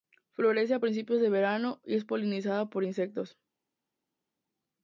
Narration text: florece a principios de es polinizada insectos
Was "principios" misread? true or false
false